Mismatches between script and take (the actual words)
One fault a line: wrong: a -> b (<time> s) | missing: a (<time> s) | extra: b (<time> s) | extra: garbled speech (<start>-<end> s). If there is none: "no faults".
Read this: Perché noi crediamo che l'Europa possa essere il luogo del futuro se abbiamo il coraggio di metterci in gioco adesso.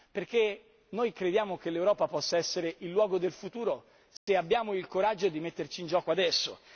no faults